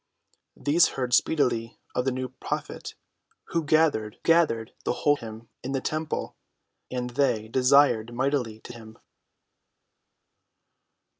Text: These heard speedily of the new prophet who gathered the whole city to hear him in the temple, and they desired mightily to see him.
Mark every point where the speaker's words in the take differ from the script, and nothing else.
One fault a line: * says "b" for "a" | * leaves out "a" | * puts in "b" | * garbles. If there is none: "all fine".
* puts in "gathered"
* leaves out "city to hear"
* leaves out "see"